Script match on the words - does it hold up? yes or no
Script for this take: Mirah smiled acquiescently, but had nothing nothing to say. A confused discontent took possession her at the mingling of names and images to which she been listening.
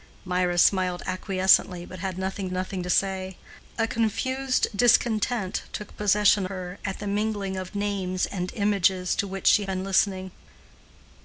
yes